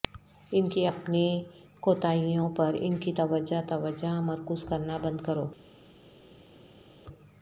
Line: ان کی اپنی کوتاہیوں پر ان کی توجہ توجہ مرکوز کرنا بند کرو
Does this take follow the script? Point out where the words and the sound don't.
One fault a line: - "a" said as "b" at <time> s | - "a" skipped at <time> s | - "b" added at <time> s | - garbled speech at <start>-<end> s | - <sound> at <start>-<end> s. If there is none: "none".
none